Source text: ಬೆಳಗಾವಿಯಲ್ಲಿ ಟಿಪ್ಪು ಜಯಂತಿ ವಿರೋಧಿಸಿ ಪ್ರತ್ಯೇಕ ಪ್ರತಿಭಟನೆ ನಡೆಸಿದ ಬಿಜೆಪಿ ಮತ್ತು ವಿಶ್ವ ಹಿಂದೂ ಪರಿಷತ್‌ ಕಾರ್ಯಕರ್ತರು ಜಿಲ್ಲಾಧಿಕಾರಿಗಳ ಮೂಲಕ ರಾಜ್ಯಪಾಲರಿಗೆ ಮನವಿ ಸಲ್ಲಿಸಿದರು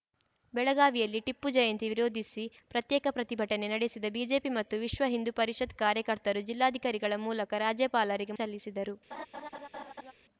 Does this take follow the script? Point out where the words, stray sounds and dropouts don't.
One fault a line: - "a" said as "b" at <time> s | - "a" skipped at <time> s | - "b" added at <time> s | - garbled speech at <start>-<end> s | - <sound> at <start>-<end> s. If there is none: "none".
- "ಮನವಿ" skipped at 8.3 s
- laugh at 9.1-10.1 s